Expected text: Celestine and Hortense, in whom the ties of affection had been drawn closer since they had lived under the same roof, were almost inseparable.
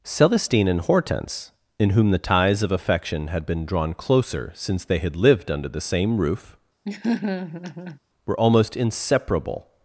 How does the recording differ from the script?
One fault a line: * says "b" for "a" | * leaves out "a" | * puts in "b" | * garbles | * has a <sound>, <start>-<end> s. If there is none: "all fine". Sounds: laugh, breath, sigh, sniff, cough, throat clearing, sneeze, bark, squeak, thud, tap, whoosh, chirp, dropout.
* has a laugh, 6.8-8.0 s